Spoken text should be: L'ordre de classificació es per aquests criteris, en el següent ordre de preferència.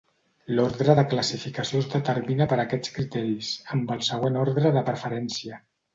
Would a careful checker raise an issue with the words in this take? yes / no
yes